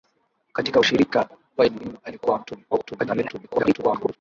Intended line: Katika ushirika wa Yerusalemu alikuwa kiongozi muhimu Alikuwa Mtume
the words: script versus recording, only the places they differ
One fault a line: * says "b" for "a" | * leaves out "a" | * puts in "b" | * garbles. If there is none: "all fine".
* leaves out "Yerusalemu alikuwa kiongozi"
* garbles